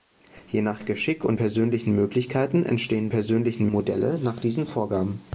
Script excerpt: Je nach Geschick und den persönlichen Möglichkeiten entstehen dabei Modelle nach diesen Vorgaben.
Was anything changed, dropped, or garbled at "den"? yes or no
yes